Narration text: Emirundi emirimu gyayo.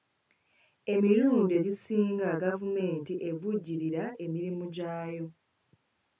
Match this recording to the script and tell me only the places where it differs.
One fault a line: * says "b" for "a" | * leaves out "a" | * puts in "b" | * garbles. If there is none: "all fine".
* puts in "egisinga gavumenti evujjirira"